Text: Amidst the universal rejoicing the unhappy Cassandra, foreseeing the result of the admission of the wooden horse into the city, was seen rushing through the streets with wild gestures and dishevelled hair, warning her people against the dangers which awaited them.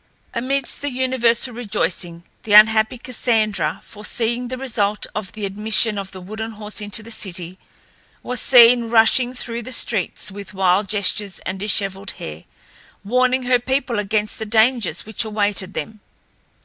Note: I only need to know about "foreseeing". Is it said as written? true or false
true